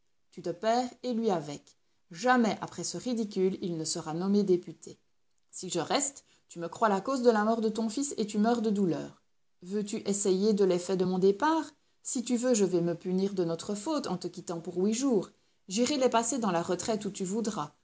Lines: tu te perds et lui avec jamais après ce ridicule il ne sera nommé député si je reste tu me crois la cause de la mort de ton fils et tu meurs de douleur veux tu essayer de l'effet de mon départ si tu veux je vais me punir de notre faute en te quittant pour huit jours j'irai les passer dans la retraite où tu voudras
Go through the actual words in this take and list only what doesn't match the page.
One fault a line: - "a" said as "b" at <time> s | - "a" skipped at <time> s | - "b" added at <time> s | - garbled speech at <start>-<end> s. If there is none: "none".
none